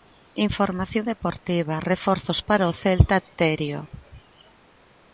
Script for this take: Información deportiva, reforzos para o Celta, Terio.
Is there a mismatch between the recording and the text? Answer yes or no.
no